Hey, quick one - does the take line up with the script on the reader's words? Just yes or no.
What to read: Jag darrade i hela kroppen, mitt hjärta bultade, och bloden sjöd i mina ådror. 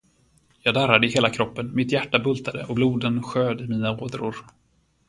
yes